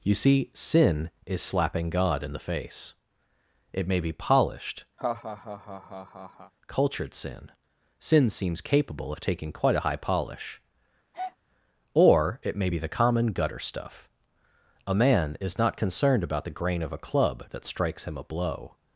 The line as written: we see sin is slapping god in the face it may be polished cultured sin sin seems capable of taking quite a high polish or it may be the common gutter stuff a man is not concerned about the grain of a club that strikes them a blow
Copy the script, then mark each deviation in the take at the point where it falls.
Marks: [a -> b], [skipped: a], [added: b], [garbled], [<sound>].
[we -> you] see sin is slapping god in the face it may be polished [laugh] cultured sin sin seems capable of taking quite a high polish [breath] or it may be the common gutter stuff a man is not concerned about the grain of a club that strikes [them -> him] a blow